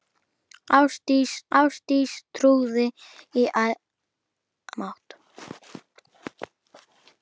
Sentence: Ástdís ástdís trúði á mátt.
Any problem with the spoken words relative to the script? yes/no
no